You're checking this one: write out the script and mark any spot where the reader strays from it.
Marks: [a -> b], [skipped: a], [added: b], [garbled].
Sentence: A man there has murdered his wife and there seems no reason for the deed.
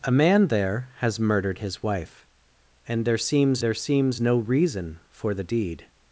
A man there has murdered his wife and there seems [added: there seems] no reason for the deed.